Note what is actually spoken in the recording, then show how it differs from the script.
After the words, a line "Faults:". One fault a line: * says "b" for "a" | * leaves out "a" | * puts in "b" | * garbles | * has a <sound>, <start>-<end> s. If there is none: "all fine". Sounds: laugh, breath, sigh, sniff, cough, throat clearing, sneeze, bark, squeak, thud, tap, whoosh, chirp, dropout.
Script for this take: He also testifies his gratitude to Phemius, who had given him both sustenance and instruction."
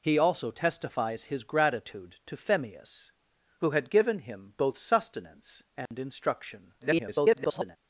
He also testifies his gratitude to Phemius, who had given him both sustenance and instruction." [garbled]
Faults:
* has a dropout, 5.9-5.9 s
* garbles